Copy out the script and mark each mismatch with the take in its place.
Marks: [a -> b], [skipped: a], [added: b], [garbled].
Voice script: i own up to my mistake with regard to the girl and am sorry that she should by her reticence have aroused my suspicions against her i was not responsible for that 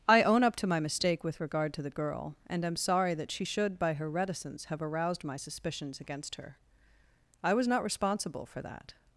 i own up to my mistake with regard to the girl and am sorry that she should by her reticence have aroused my suspicions against her i was not responsible for that